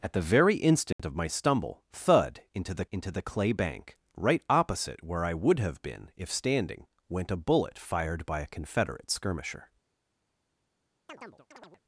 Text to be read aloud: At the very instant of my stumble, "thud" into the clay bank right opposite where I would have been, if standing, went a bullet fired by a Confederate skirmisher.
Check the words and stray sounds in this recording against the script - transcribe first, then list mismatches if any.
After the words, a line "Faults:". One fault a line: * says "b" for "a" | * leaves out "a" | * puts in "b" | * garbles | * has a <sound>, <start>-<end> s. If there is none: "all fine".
At the very instant of my stumble, "thud" into the into the clay bank right opposite where I would have been, if standing, went a bullet fired by a Confederate skirmisher.
Faults:
* has a dropout, 0.9-1.0 s
* puts in "into the"
* has a chirp, 11.1-11.8 s